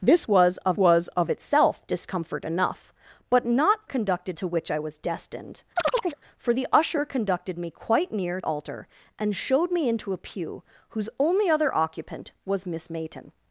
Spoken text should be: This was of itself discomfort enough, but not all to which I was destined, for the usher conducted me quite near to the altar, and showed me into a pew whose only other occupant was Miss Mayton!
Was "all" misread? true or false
true